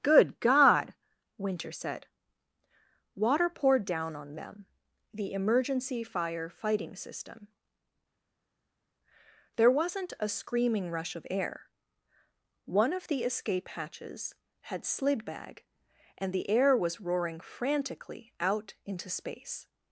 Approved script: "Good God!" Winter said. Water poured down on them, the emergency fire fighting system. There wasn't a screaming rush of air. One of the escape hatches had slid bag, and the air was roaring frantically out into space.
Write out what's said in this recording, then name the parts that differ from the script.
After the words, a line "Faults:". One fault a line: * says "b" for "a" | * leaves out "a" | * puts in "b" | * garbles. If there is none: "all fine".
"Good God!" Winter said. Water poured down on them, the emergency fire fighting system. There wasn't a screaming rush of air. One of the escape hatches had slid bag, and the air was roaring frantically out into space.
Faults:
all fine